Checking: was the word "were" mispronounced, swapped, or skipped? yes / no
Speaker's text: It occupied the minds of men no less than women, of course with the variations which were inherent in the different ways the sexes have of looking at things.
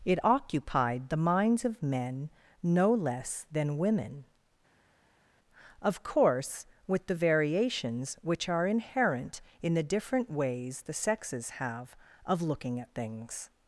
yes